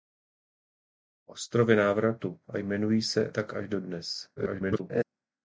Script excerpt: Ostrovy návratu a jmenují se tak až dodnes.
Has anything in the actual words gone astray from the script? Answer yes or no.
yes